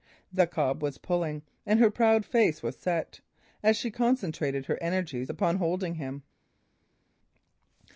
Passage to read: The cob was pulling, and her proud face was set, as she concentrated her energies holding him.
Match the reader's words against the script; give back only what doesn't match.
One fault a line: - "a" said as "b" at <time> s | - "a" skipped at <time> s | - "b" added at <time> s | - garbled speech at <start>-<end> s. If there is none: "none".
- "upon" added at 5.3 s